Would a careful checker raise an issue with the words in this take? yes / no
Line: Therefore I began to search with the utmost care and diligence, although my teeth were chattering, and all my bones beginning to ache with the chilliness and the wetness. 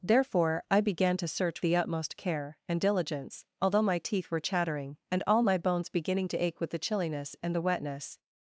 yes